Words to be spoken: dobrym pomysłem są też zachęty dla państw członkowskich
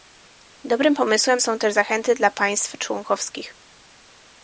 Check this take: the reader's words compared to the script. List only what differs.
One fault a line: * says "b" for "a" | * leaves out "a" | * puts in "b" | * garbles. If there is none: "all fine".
all fine